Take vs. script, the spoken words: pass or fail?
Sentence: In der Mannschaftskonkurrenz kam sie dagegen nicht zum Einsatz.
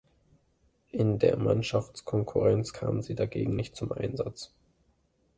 pass